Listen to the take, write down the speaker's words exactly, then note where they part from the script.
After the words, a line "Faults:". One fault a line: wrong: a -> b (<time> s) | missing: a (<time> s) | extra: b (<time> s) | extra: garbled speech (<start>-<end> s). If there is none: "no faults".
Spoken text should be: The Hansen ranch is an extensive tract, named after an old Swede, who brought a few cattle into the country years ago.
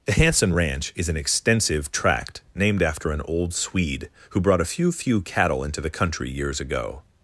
The Hansen ranch is an extensive tract, named after an old Swede, who brought a few few cattle into the country years ago.
Faults:
extra: few (4.9 s)